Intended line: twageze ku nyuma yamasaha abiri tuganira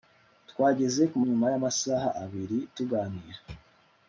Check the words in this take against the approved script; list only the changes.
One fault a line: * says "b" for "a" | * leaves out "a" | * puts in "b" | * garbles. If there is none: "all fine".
all fine